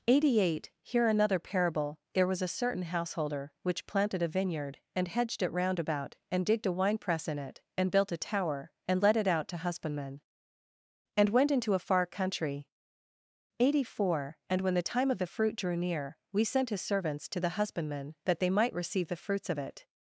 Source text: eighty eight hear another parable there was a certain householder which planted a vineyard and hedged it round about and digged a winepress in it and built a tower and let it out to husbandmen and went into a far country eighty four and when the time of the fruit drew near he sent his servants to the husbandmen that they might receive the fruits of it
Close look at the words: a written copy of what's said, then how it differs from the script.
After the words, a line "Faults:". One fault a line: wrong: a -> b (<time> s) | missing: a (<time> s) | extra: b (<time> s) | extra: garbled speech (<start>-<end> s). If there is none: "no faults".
eighty eight hear another parable there was a certain householder which planted a vineyard and hedged it round about and digged a winepress in it and built a tower and let it out to husbandmen and went into a far country eighty four and when the time of the fruit drew near we sent his servants to the husbandmen that they might receive the fruits of it
Faults:
wrong: he -> we (16.3 s)